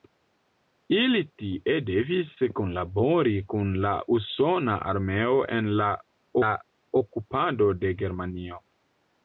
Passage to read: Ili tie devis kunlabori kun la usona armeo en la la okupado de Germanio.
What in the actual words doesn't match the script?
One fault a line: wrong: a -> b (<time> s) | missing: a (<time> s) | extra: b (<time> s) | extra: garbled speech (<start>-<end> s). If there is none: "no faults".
no faults